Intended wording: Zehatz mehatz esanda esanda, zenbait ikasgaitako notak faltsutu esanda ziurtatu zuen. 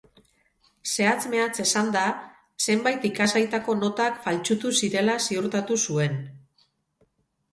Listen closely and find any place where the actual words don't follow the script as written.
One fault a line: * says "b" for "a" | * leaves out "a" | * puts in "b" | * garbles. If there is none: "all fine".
* leaves out "esanda"
* says "zirela" for "esanda"